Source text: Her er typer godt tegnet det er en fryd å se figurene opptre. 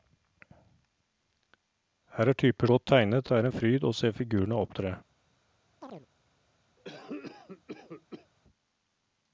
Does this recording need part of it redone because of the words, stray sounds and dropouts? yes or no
yes